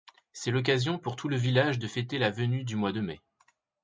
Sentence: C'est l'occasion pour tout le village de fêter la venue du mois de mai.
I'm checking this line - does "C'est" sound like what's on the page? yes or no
yes